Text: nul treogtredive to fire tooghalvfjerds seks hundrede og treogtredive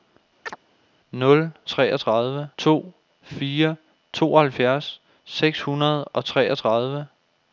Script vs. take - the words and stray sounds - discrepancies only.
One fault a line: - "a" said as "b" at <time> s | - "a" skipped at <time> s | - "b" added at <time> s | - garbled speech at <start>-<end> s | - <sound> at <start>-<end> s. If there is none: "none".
- chirp at 0.5-0.6 s